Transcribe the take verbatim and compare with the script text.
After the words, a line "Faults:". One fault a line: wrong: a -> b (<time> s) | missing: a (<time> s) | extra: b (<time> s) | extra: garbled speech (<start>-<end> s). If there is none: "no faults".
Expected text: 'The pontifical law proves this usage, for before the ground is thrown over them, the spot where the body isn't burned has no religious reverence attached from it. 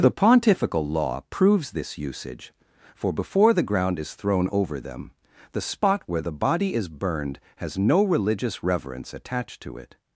'The pontifical law proves this usage, for before the ground is thrown over them, the spot where the body is burned has no religious reverence attached to it.
Faults:
wrong: isn't -> is (6.7 s)
wrong: from -> to (9.6 s)